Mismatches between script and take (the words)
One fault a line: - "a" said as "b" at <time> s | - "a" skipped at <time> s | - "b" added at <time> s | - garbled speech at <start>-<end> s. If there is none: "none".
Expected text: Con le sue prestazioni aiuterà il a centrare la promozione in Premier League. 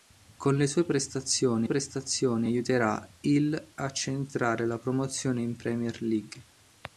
- "prestazioni" added at 1.6 s